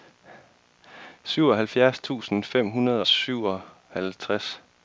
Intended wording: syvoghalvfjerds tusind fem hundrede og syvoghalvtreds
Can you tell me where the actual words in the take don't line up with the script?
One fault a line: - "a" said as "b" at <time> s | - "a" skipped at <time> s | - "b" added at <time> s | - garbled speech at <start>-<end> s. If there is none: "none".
- "og" skipped at 3.0 s